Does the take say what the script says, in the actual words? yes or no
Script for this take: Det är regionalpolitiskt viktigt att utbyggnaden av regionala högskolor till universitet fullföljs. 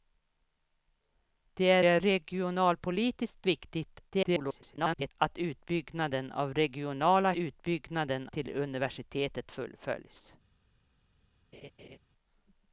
no